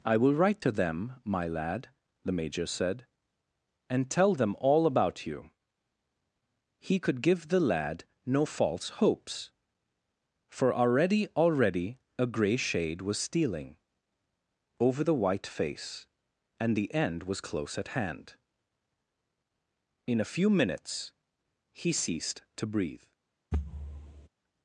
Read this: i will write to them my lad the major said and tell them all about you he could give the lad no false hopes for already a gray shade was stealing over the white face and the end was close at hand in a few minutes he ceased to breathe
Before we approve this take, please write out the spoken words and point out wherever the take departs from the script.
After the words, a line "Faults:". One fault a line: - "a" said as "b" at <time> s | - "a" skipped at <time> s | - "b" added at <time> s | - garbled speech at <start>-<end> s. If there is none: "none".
i will write to them my lad the major said and tell them all about you he could give the lad no false hopes for already already a gray shade was stealing over the white face and the end was close at hand in a few minutes he ceased to breathe
Faults:
- "already" added at 11.4 s